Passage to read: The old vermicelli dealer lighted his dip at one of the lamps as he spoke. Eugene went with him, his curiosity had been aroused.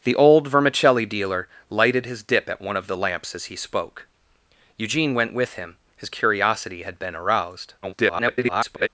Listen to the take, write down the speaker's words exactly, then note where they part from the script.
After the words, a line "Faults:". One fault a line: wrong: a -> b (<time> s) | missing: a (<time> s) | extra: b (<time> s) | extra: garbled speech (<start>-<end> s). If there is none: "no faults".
The old vermicelli dealer lighted his dip at one of the lamps as he spoke. Eugene went with him, his curiosity had been aroused. [garbled]
Faults:
extra: garbled speech (7.8-8.9 s)